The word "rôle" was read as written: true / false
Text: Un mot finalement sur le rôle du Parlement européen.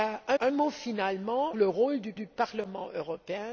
true